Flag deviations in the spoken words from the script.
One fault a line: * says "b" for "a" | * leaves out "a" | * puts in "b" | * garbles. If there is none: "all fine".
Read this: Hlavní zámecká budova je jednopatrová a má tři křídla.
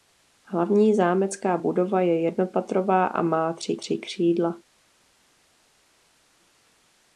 * puts in "tři"